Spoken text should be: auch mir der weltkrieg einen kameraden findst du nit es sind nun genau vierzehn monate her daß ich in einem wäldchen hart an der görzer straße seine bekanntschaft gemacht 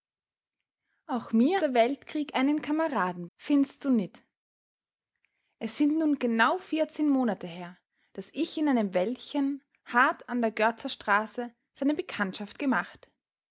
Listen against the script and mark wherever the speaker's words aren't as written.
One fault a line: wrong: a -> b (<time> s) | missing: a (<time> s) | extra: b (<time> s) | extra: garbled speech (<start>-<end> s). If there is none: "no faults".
no faults